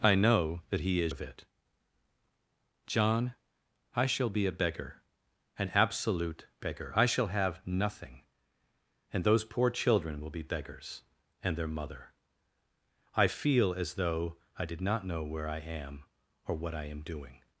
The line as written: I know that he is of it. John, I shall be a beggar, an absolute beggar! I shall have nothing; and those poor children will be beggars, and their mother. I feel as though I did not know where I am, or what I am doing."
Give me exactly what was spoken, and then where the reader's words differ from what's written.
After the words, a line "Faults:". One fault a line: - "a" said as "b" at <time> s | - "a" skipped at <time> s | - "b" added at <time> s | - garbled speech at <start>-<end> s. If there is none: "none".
I know that he is of it. John, I shall be a beggar, an absolute beggar! I shall have nothing; and those poor children will be beggars, and their mother. I feel as though I did not know where I am, or what I am doing."
Faults:
none